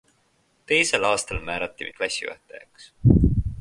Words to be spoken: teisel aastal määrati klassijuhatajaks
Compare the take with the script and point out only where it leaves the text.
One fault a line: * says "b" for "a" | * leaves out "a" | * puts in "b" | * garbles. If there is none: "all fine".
all fine